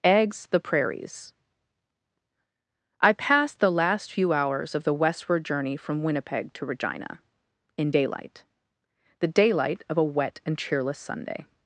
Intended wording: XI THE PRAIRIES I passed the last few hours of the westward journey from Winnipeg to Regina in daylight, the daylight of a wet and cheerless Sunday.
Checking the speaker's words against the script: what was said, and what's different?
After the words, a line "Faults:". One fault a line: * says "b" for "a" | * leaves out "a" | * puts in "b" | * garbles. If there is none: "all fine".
Eggs THE PRAIRIES I passed the last few hours of the westward journey from Winnipeg to Regina in daylight, the daylight of a wet and cheerless Sunday.
Faults:
* says "Eggs" for "XI"